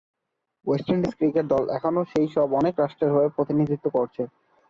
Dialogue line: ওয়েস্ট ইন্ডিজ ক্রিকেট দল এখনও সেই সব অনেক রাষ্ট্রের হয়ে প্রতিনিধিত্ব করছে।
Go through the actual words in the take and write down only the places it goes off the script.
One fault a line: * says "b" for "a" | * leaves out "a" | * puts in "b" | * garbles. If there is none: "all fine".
all fine